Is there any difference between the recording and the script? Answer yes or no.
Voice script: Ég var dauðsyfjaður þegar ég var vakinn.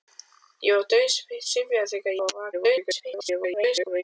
yes